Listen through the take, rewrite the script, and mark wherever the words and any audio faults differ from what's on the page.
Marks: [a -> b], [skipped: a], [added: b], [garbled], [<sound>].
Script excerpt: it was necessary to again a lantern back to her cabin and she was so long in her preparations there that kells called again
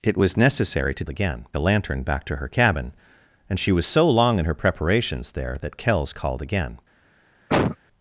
it was necessary to again a lantern back to her cabin and she was so long in her preparations there that kells called again [cough]